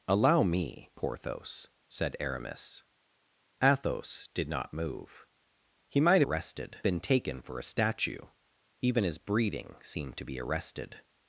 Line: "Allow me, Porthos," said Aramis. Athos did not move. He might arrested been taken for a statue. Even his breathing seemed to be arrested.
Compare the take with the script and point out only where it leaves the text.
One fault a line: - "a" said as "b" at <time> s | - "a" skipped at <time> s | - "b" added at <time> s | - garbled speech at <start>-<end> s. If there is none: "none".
none